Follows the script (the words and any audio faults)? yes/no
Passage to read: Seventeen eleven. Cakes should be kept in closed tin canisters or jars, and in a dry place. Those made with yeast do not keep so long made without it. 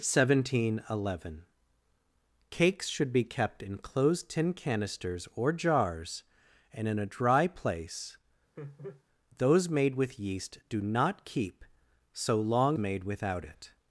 no